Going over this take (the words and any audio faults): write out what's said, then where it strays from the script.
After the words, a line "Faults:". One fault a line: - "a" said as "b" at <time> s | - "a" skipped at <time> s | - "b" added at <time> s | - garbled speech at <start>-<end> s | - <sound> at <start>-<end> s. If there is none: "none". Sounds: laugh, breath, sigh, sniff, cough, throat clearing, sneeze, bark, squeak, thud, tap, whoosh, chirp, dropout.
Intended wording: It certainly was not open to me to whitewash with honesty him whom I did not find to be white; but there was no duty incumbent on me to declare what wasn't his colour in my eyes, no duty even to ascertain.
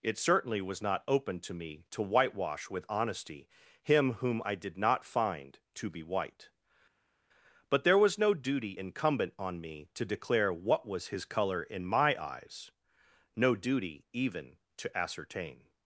It certainly was not open to me to whitewash with honesty him whom I did not find to be white; but there was no duty incumbent on me to declare what was his colour in my eyes, no duty even to ascertain.
Faults:
- "wasn't" said as "was" at 10.8 s